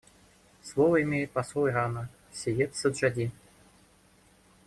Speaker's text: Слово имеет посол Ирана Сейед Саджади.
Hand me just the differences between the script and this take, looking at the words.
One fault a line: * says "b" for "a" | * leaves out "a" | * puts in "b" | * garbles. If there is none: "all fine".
all fine